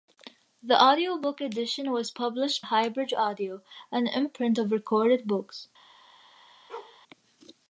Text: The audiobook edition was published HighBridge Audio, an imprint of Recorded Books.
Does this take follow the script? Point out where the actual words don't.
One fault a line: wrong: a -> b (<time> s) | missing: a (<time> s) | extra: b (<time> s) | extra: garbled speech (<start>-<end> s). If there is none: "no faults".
no faults